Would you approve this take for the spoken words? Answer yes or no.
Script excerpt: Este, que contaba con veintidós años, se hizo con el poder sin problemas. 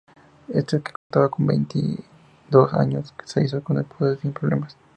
yes